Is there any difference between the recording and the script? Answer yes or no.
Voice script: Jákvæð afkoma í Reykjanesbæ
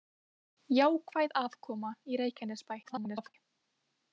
yes